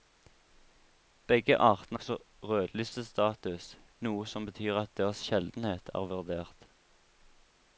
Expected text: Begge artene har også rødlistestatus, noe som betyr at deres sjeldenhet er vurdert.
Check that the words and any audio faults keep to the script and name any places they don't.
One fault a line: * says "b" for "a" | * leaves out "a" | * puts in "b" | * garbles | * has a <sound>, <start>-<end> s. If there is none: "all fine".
* leaves out "har"